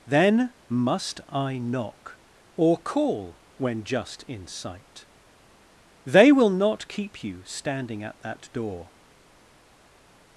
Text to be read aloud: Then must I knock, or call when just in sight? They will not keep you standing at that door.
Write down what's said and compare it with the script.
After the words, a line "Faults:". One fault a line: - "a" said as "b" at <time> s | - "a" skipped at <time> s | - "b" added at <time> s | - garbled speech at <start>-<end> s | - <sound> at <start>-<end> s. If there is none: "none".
Then must I knock, or call when just in sight? They will not keep you standing at that door.
Faults:
none